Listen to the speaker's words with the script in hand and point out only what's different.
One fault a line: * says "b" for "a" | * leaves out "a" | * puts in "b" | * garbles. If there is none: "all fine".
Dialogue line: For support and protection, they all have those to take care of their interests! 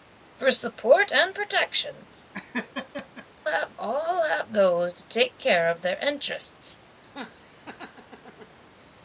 * says "have" for "they"